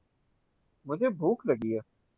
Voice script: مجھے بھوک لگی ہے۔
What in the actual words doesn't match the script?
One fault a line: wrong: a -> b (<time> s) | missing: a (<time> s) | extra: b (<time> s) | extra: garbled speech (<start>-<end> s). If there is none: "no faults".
no faults